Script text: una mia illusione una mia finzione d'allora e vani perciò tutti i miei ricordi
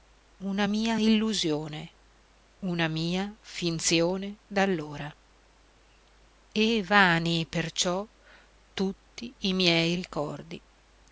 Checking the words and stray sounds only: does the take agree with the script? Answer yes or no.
yes